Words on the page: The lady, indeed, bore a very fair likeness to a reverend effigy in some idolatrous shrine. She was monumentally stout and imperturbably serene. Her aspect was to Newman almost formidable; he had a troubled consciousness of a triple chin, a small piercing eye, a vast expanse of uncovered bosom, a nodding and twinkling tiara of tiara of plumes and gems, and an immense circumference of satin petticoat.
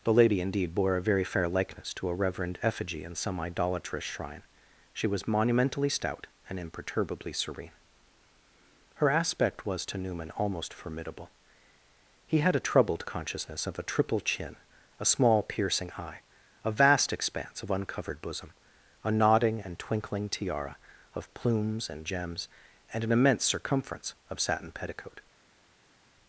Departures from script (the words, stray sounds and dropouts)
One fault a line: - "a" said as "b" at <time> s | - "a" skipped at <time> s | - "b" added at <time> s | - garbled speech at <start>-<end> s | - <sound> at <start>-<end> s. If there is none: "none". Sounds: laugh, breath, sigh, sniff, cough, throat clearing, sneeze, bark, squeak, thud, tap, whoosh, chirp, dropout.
- "tiara of" skipped at 21.3 s